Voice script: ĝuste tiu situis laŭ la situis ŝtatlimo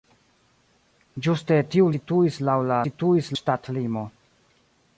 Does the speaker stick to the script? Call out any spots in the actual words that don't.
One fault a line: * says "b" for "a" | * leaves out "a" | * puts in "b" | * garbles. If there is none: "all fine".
all fine